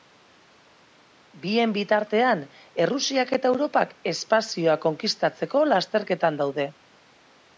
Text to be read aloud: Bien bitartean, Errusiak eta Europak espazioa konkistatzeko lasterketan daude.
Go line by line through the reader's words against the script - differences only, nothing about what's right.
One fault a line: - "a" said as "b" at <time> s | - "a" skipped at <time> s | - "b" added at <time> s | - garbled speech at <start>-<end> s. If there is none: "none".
none